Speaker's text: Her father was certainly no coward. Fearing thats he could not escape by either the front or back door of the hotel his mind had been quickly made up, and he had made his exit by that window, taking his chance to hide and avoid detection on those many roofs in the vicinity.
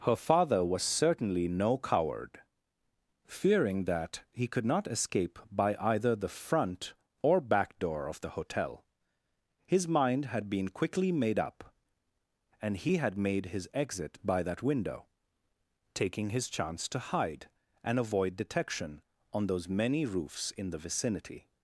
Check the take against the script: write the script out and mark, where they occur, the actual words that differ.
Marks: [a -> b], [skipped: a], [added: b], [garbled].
Her father was certainly no coward. Fearing [thats -> that] he could not escape by either the front or back door of the hotel his mind had been quickly made up, and he had made his exit by that window, taking his chance to hide and avoid detection on those many roofs in the vicinity.